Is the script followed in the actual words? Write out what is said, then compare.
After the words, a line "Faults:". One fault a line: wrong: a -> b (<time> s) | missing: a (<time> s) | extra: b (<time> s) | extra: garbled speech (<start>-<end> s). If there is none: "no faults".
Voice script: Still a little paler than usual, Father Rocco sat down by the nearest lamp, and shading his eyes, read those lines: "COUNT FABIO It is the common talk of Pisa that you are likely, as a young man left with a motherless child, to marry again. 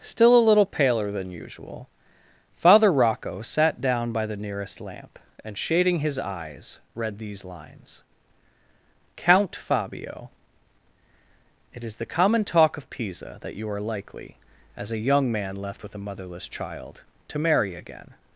Still a little paler than usual, Father Rocco sat down by the nearest lamp, and shading his eyes, read these lines: "COUNT FABIO It is the common talk of Pisa that you are likely, as a young man left with a motherless child, to marry again.
Faults:
wrong: those -> these (7.2 s)